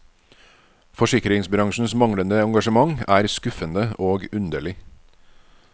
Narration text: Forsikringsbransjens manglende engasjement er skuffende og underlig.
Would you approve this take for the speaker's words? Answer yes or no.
yes